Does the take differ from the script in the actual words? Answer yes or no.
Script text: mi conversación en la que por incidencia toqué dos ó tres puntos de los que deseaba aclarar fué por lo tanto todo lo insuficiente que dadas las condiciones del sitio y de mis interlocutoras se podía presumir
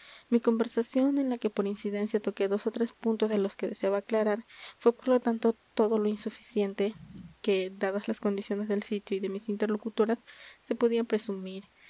no